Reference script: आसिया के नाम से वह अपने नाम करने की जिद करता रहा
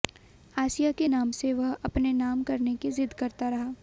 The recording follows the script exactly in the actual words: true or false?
true